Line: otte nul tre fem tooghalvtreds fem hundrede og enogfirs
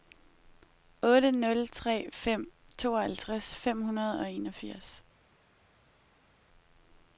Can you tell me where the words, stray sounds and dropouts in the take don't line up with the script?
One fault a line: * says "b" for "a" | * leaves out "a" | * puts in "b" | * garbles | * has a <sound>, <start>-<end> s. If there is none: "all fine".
all fine